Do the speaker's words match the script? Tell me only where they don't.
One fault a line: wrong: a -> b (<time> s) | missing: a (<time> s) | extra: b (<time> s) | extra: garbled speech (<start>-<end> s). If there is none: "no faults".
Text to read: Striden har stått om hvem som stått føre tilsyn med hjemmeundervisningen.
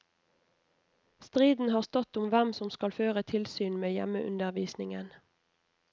wrong: stått -> skal (2.7 s)